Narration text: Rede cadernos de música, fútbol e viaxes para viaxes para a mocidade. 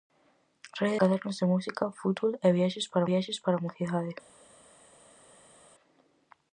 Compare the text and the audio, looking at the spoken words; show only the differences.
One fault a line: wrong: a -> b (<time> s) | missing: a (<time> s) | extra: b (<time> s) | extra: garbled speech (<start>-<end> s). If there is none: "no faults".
no faults